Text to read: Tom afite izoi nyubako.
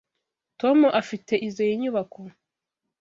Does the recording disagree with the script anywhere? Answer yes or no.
no